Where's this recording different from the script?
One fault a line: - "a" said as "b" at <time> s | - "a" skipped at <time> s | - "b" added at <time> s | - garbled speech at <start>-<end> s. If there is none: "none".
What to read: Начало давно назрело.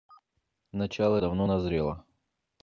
none